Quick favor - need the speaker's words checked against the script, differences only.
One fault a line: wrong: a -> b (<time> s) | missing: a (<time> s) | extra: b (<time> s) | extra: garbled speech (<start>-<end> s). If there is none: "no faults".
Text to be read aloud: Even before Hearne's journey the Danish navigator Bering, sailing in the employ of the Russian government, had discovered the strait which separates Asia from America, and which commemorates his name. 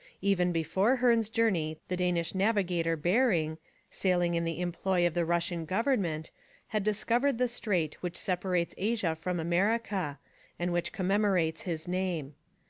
no faults